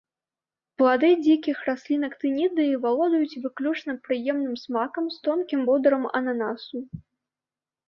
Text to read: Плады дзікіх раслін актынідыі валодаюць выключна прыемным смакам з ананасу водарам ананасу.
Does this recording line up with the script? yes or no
no